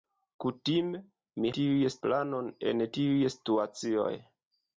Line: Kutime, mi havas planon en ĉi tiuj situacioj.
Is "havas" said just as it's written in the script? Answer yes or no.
no